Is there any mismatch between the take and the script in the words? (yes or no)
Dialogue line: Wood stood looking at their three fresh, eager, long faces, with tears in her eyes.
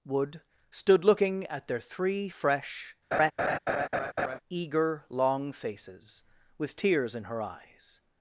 no